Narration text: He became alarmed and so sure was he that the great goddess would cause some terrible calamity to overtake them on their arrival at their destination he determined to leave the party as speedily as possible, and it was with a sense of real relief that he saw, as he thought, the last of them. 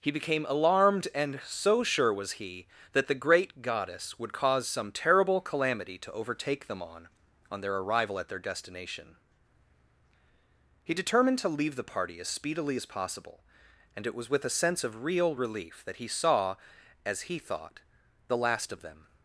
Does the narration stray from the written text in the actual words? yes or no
yes